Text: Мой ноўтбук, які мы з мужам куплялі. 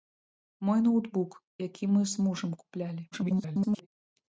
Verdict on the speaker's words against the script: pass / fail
fail